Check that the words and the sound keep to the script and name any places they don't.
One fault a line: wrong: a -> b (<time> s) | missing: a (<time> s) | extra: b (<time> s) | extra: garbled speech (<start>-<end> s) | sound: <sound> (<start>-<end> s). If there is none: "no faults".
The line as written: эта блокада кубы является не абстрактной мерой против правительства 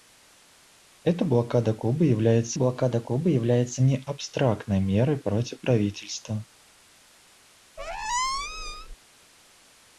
extra: блокада кубы является (2.5 s)
sound: squeak (7.8-9.0 s)